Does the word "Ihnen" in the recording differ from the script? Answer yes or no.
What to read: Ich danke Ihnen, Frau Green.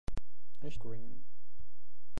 yes